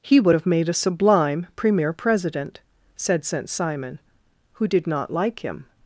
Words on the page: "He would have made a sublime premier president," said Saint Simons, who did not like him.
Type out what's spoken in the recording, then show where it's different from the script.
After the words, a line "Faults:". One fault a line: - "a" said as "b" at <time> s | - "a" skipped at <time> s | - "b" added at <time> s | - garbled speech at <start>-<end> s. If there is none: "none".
"He would have made a sublime premier president," said Saint Simon, who did not like him.
Faults:
- "Simons" said as "Simon" at 3.5 s